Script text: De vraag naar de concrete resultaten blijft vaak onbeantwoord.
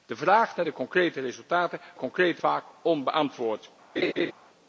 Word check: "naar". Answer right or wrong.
right